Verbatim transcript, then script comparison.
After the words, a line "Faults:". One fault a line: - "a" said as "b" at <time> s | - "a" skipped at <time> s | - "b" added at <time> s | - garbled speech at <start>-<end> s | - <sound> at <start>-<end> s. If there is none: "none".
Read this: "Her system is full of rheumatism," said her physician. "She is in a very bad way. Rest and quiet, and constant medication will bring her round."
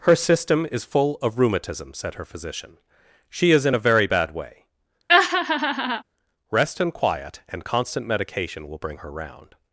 "Her system is full of rheumatism," said her physician. "She is in a very bad way. Rest and quiet, and constant medication will bring her round."
Faults:
- laugh at 5.1-6.0 s